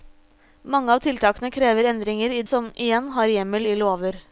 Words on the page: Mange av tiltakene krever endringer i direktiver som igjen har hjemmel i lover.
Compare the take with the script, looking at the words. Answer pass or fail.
fail